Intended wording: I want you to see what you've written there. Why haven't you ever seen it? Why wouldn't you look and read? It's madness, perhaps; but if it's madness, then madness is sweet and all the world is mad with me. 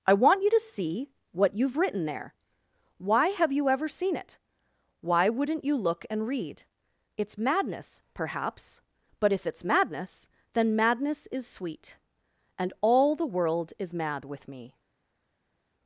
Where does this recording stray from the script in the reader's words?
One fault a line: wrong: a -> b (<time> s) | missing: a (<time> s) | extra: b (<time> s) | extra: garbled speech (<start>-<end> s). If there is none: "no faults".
wrong: haven't -> have (3.3 s)